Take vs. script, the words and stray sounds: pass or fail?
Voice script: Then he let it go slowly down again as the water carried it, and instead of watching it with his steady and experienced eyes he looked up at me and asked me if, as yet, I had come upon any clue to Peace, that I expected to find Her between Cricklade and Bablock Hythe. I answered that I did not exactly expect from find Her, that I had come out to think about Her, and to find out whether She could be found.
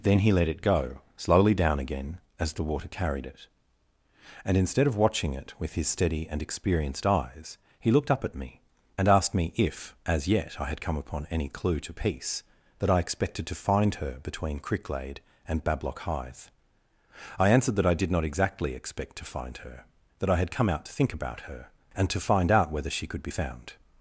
fail